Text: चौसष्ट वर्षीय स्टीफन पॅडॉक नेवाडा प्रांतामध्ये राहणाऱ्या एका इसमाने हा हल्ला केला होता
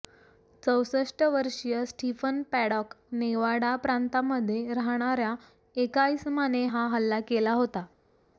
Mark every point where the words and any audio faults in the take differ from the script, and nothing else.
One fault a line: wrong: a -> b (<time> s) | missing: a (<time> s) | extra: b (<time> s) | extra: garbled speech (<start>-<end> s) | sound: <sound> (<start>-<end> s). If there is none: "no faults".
no faults